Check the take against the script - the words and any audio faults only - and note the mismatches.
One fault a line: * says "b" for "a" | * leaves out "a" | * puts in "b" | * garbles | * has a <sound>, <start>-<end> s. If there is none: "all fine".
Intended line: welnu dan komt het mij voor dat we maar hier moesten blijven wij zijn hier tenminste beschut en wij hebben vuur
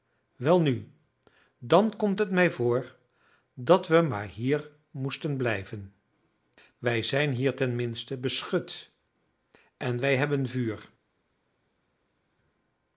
all fine